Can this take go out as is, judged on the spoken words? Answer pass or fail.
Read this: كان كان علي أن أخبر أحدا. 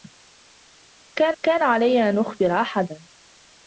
pass